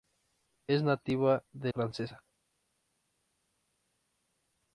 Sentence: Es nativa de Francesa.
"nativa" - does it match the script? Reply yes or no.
yes